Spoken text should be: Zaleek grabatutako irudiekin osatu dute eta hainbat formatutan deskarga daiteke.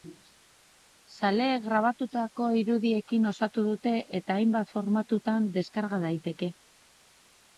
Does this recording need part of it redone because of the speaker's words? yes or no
no